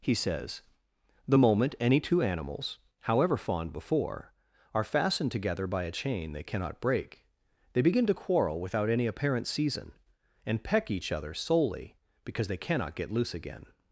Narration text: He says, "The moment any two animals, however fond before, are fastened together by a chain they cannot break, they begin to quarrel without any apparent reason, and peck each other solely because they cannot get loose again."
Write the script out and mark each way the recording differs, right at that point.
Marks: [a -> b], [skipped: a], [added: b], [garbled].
He says, "The moment any two animals, however fond before, are fastened together by a chain they cannot break, they begin to quarrel without any apparent [reason, -> season] and peck each other solely because they cannot get loose again."